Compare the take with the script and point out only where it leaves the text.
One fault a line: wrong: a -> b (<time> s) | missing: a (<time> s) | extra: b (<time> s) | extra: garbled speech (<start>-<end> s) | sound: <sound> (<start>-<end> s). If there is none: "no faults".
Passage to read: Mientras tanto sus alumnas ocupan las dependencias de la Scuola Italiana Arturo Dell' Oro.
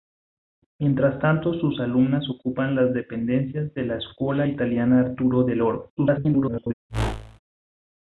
extra: garbled speech (6.0-6.7 s)
sound: whoosh (6.9-7.4 s)